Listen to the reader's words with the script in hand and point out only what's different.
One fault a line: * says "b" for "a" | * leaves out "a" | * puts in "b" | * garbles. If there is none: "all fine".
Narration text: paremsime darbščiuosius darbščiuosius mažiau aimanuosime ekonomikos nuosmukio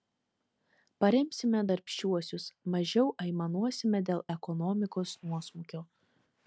* leaves out "darbščiuosius"
* puts in "dėl"